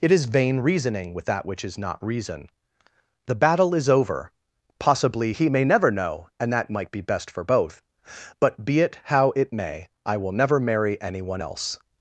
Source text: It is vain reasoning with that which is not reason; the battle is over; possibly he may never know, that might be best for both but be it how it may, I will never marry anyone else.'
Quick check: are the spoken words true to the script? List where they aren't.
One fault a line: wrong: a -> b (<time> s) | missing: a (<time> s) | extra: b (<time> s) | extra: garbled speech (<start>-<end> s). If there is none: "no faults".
extra: and (6.4 s)